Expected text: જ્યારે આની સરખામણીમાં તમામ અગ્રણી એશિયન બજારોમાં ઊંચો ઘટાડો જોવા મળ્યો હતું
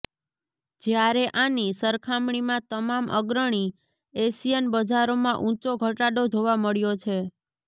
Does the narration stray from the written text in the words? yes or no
yes